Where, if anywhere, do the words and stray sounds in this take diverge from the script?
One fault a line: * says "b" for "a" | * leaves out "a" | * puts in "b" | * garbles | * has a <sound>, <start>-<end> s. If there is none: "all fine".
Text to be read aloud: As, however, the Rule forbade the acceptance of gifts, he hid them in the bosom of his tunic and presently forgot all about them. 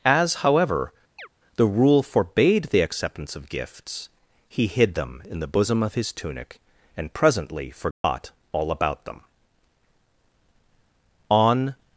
* has a chirp, 1.2-1.3 s
* has a dropout, 7.9-8.0 s
* puts in "On"